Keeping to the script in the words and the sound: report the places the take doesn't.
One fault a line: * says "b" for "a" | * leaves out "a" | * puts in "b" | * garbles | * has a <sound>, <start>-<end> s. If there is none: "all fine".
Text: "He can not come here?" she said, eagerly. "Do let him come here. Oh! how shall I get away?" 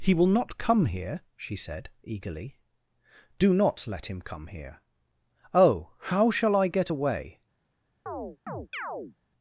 * says "will" for "can"
* puts in "not"
* has a chirp, 8.1-9.2 s